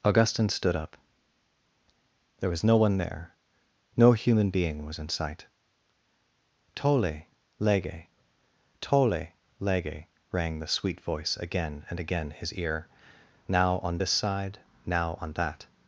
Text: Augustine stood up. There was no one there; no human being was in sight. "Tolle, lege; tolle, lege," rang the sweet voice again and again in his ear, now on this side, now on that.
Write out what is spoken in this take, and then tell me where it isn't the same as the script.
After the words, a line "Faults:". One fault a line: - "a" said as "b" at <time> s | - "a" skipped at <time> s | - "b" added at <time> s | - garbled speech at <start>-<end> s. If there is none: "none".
Augustine stood up. There was no one there; no human being was in sight. "Tolle, lege; tolle, lege," rang the sweet voice again and again his ear, now on this side, now on that.
Faults:
- "in" skipped at 12.3 s